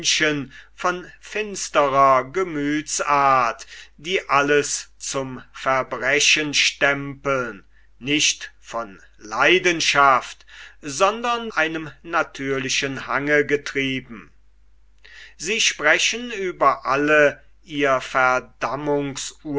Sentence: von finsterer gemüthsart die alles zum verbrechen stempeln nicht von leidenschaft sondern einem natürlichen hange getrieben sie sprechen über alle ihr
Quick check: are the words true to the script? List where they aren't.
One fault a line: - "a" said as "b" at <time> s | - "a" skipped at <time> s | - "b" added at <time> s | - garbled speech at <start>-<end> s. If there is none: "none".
none